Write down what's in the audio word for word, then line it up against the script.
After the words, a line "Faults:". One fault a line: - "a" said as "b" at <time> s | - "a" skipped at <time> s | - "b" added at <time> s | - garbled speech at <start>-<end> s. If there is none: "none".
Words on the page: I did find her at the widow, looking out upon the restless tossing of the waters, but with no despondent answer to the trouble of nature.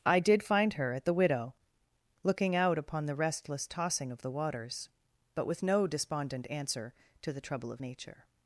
I did find her at the widow, looking out upon the restless tossing of the waters, but with no despondent answer to the trouble of nature.
Faults:
none